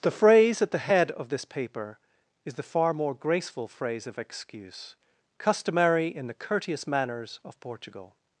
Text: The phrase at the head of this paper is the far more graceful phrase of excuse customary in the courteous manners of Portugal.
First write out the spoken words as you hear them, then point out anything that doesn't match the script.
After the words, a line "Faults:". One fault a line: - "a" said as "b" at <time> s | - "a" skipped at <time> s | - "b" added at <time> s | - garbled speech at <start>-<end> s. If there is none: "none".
The phrase at the head of this paper is the far more graceful phrase of excuse customary in the courteous manners of Portugal.
Faults:
none